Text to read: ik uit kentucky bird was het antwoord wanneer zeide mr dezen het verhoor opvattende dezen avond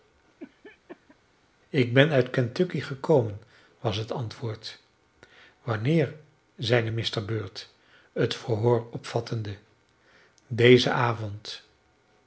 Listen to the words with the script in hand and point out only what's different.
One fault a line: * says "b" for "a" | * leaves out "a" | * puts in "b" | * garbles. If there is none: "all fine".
* puts in "ben"
* says "gekomen" for "bird"
* says "bird" for "dezen"